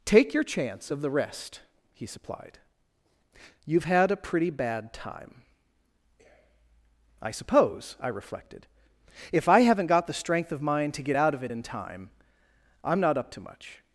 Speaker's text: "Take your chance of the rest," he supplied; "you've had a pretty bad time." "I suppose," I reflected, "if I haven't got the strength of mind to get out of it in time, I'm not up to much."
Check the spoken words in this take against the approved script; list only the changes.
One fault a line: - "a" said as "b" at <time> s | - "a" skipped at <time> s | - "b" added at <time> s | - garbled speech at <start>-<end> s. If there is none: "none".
none